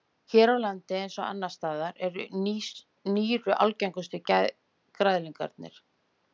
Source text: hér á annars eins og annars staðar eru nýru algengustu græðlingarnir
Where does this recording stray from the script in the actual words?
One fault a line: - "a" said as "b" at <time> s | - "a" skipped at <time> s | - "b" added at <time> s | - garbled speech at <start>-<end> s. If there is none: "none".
- "annars" said as "landi" at 0.6 s